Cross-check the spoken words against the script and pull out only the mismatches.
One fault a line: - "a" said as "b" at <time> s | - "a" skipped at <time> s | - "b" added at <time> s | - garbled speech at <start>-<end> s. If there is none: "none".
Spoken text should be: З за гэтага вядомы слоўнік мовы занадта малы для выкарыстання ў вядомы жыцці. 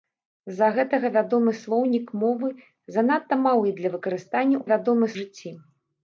none